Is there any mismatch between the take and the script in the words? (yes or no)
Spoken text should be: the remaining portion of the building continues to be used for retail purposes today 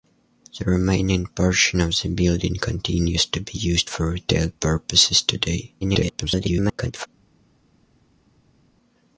yes